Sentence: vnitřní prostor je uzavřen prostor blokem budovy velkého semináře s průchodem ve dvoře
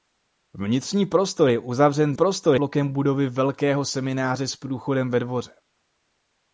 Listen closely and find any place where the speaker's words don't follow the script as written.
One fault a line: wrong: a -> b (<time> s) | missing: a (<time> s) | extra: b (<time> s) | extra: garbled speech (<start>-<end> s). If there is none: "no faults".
no faults